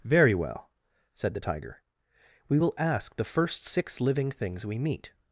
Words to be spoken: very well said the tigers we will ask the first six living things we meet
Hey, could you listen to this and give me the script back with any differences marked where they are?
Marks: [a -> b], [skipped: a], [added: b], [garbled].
very well said the [tigers -> tiger] we will ask the first six living things we meet